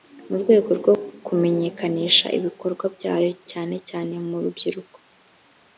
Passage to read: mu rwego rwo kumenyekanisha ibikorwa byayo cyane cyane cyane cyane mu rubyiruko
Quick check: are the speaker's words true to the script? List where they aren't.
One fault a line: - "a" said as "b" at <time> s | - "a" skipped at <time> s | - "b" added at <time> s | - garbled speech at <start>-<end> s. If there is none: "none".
- "cyane cyane" skipped at 4.1 s